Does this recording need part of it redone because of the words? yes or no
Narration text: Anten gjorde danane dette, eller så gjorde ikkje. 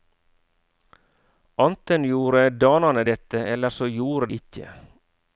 no